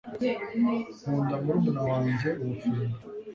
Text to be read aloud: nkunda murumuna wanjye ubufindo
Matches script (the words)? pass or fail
pass